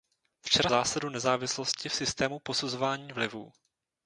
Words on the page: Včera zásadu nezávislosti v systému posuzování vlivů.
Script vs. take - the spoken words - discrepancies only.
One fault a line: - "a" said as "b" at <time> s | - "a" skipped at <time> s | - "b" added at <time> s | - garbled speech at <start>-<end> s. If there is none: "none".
none